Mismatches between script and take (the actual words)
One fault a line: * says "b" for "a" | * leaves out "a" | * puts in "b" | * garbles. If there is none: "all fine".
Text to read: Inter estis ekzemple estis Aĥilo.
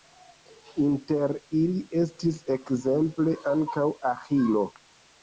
* puts in "ili"
* says "ankaŭ" for "estis"